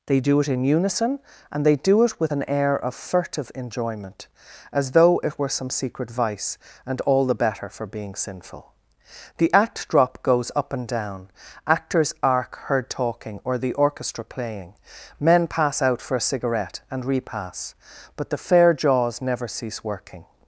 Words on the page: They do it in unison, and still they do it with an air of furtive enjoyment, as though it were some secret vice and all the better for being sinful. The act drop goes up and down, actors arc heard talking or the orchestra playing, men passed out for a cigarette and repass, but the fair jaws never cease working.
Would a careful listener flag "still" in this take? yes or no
yes